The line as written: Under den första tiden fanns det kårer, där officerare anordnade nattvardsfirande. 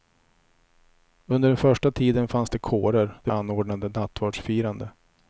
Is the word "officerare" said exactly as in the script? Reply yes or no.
no